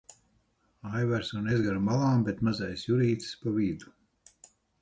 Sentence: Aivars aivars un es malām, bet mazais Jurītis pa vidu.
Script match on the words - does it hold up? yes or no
no